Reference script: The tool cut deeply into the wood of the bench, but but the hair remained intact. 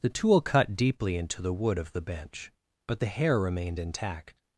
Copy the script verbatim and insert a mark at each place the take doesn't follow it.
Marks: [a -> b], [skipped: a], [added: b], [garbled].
The tool cut deeply into the wood of the bench, but [skipped: but] the hair remained intact.